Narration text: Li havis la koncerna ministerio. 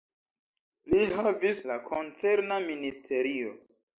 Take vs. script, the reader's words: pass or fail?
pass